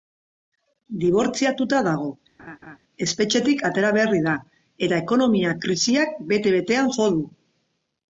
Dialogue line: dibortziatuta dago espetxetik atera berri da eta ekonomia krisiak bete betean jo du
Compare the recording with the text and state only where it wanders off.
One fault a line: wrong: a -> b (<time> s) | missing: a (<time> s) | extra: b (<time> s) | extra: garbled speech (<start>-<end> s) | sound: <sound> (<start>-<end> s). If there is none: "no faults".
sound: laugh (2.4-2.8 s)